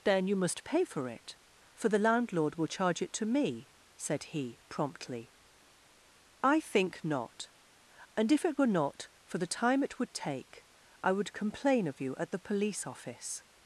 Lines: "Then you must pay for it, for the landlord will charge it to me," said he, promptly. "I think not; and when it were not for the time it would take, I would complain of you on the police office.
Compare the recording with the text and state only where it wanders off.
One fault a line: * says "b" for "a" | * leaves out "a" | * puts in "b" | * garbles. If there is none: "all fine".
* says "if" for "when"
* says "at" for "on"